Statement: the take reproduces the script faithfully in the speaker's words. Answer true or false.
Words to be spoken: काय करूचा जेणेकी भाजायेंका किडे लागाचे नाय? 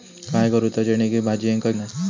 false